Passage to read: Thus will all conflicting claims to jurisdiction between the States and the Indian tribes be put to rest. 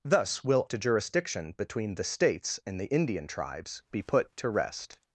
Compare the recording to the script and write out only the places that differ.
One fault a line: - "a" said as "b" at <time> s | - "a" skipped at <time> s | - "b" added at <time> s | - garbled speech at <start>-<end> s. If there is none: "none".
- "all conflicting claims" skipped at 0.7 s